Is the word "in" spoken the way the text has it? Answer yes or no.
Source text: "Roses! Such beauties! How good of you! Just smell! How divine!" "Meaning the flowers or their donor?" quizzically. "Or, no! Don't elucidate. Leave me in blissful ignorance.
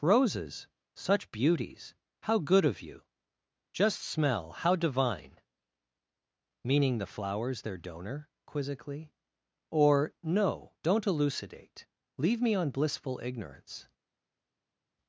no